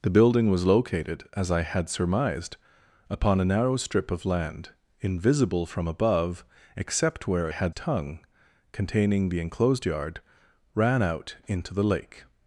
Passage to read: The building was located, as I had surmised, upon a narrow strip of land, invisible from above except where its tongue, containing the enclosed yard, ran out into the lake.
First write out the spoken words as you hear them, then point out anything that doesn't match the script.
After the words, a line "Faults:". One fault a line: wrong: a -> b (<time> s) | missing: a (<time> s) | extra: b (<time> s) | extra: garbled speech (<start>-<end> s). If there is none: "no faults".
The building was located, as I had surmised, upon a narrow strip of land, invisible from above except where had tongue, containing the enclosed yard, ran out into the lake.
Faults:
wrong: its -> had (7.5 s)